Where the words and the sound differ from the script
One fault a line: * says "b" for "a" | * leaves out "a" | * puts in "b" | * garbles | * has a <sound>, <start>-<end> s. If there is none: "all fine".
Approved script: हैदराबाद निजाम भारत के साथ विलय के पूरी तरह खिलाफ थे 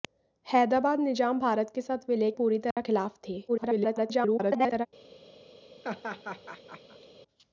* leaves out "के"
* has a dropout, 2.7-2.8 s
* garbles
* has a laugh, 5.8-7.1 s